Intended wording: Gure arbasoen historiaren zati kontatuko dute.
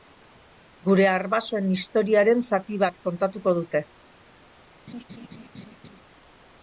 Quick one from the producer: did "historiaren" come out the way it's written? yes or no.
yes